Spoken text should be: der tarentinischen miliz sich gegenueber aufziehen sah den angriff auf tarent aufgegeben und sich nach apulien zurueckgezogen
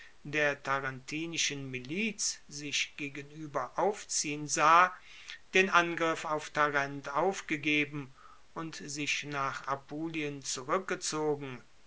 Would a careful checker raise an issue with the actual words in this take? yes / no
no